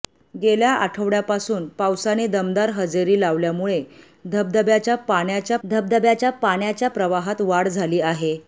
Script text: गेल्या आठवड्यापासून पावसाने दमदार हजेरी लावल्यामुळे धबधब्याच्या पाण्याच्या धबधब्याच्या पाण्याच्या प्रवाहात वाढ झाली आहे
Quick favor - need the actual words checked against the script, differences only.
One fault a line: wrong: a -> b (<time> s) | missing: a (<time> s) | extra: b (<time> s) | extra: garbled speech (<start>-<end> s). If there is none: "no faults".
no faults